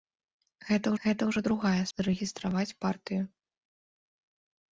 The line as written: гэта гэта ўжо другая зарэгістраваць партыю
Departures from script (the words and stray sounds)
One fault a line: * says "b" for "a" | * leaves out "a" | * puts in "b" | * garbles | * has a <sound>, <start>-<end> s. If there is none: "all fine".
all fine